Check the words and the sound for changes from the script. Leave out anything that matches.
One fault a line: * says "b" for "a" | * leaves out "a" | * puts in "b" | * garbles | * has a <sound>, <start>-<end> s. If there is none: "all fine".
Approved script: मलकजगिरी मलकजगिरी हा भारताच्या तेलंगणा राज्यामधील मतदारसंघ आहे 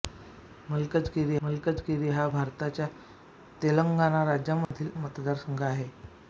* has a dropout, 4.6-4.7 s